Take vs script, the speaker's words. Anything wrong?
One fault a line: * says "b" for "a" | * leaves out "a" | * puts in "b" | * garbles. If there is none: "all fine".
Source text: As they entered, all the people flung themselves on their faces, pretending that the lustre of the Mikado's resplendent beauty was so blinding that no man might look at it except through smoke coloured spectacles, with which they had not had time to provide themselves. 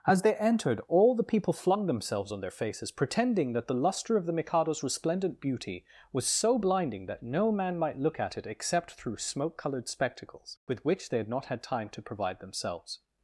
all fine